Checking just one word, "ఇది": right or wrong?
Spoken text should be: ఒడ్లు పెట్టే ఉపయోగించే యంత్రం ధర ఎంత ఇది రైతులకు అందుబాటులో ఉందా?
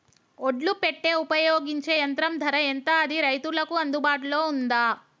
wrong